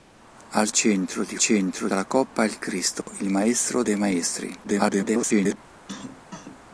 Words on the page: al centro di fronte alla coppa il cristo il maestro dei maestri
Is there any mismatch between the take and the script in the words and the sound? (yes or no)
yes